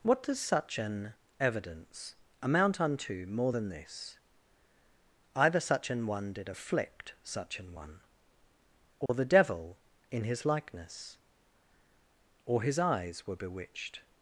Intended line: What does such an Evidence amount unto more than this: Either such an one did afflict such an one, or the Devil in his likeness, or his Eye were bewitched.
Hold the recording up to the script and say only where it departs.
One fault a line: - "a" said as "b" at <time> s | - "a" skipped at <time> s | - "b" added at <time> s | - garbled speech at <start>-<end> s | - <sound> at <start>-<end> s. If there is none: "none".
- dropout at 9.1-9.1 s
- "Eye" said as "Eyes" at 12.8 s